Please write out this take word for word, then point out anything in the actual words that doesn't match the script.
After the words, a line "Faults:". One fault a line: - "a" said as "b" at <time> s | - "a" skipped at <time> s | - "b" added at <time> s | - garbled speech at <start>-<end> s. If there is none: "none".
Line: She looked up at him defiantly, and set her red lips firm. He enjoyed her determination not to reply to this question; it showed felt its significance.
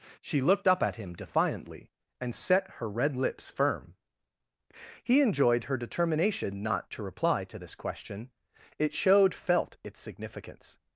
She looked up at him defiantly, and set her red lips firm. He enjoyed her determination not to reply to this question; it showed felt its significance.
Faults:
none